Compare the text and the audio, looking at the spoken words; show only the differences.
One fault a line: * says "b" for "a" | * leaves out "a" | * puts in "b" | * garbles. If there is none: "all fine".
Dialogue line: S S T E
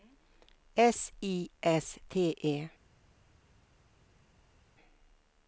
* puts in "I"